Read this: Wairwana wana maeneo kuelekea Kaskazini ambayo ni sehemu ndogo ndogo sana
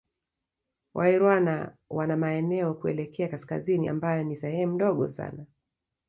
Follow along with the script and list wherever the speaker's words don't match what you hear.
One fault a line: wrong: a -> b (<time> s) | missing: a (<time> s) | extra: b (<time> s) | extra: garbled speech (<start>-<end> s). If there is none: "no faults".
missing: ndogo (5.1 s)